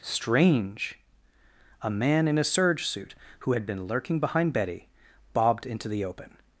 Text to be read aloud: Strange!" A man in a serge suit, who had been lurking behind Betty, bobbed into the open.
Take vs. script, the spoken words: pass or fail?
pass